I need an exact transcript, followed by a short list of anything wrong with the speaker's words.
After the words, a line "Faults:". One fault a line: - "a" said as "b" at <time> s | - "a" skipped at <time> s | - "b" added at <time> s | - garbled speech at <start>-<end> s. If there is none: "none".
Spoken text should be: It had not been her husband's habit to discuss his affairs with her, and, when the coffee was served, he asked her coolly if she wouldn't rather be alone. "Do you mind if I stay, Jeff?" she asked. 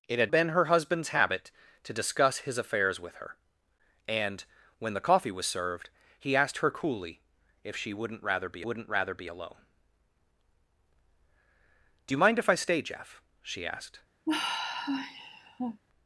It had been her husband's habit to discuss his affairs with her, and, when the coffee was served, he asked her coolly if she wouldn't rather be wouldn't rather be alone. "Do you mind if I stay, Jeff?" she asked.
Faults:
- "not" skipped at 0.3 s
- "wouldn't rather be" added at 8.6 s